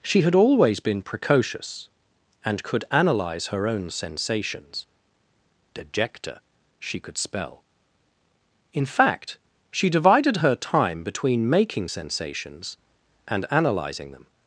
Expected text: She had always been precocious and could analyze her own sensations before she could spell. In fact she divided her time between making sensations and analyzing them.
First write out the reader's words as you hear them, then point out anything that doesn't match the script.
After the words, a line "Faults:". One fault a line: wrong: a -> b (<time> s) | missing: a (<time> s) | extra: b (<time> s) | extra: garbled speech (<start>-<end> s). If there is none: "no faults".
She had always been precocious and could analyze her own sensations dejecta she could spell. In fact she divided her time between making sensations and analyzing them.
Faults:
wrong: before -> dejecta (5.8 s)